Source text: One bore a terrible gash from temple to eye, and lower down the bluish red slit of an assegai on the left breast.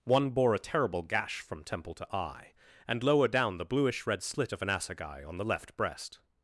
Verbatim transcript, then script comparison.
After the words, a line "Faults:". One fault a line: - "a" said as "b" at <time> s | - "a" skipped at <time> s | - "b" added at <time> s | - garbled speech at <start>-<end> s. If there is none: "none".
One bore a terrible gash from temple to eye, and lower down the bluish red slit of an assegai on the left breast.
Faults:
none